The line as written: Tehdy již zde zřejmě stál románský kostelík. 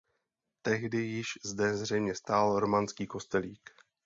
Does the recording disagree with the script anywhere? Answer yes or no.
no